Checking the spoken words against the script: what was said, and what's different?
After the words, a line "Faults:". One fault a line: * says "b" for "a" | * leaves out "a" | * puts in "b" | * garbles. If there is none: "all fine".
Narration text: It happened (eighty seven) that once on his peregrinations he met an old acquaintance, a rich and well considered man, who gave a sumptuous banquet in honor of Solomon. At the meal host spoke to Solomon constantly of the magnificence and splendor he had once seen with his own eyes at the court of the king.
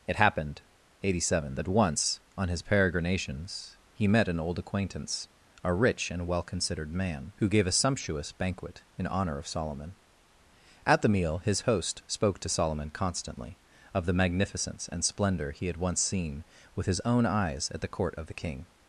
It happened (eighty seven) that once on his peregrinations he met an old acquaintance, a rich and well considered man, who gave a sumptuous banquet in honor of Solomon. At the meal his host spoke to Solomon constantly of the magnificence and splendor he had once seen with his own eyes at the court of the king.
Faults:
* puts in "his"